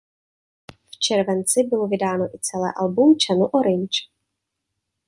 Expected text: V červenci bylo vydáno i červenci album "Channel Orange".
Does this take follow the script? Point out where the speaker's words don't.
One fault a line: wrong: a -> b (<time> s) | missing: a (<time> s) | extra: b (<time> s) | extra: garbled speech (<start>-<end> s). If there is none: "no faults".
wrong: červenci -> celé (2.4 s)